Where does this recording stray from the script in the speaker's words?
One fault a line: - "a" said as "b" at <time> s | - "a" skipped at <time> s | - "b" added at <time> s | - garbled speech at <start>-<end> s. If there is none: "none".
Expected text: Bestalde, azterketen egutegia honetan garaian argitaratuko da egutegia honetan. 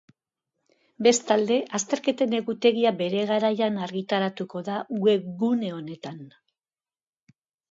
- "honetan" said as "bere" at 3.0 s
- "egutegia" said as "webgune" at 5.1 s